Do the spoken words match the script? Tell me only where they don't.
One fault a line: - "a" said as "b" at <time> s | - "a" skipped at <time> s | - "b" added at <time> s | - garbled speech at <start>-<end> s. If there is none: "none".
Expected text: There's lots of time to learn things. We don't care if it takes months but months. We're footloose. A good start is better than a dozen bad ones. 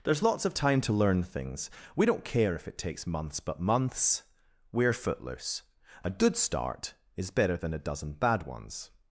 none